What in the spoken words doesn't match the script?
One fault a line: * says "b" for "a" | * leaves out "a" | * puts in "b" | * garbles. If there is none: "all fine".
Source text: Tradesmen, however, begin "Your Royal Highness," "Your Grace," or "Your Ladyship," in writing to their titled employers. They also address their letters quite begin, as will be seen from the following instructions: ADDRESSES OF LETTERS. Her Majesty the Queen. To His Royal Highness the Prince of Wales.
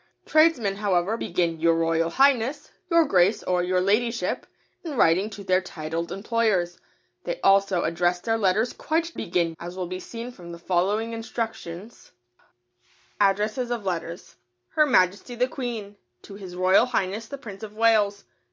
all fine